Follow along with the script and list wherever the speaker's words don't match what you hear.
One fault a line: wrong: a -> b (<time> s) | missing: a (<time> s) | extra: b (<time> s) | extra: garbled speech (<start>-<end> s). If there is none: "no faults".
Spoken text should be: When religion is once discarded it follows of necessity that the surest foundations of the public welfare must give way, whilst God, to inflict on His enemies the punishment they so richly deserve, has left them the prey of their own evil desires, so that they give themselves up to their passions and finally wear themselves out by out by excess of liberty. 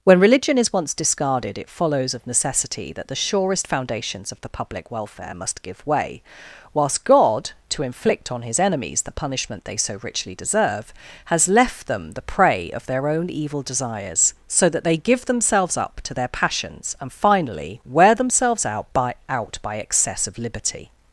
no faults